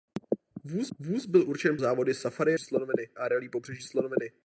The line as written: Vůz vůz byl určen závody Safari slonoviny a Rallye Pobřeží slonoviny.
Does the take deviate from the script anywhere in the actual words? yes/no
no